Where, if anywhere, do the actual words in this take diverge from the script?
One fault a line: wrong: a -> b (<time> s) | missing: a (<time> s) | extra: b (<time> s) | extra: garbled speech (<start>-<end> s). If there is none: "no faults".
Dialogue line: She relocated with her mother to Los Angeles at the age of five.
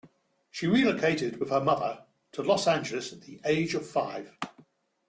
no faults